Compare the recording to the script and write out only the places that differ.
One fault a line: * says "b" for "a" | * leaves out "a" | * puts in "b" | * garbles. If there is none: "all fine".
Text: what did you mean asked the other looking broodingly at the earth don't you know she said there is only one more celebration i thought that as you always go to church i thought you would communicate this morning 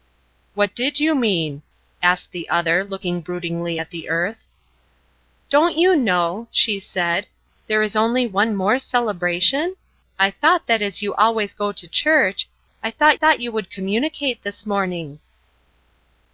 * puts in "thought"